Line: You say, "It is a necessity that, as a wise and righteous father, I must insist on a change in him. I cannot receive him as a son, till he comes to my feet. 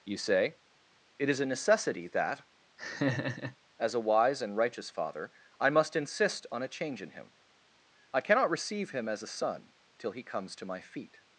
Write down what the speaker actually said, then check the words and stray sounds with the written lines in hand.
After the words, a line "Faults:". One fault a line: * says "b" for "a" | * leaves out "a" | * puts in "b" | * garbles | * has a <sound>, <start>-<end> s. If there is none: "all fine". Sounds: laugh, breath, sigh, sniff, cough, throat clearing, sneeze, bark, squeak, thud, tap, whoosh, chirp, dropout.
You say, "It is a necessity that, as a wise and righteous father, I must insist on a change in him. I cannot receive him as a son, till he comes to my feet.
Faults:
* has a laugh, 2.8-3.6 s